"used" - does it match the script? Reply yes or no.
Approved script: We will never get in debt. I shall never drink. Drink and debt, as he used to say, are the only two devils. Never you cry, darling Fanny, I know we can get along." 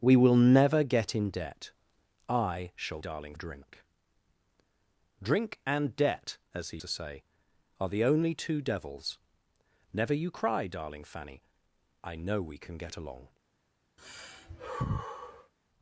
no